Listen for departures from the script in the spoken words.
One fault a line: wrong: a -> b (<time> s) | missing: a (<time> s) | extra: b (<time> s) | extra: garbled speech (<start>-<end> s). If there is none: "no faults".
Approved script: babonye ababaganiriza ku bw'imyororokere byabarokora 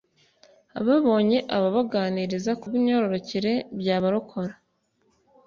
no faults